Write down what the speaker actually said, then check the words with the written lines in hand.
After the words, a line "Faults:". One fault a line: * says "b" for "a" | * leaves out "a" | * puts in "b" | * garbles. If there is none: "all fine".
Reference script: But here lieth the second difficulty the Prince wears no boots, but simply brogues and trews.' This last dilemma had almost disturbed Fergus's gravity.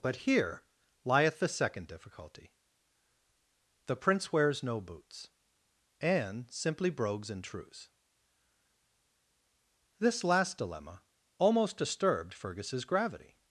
But here lieth the second difficulty the Prince wears no boots, and simply brogues and trews.' This last dilemma almost disturbed Fergus's gravity.
Faults:
* says "and" for "but"
* leaves out "had"